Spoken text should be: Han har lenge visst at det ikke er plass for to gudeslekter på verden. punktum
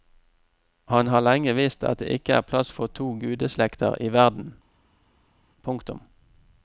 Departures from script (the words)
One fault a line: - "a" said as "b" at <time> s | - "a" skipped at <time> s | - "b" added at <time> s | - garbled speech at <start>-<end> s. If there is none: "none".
- "på" said as "i" at 4.0 s